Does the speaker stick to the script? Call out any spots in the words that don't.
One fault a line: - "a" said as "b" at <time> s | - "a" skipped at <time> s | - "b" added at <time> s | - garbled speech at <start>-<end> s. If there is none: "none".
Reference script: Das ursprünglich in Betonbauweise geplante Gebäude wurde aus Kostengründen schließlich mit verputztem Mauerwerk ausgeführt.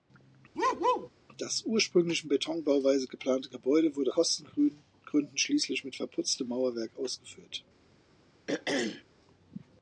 - "aus" skipped at 4.1 s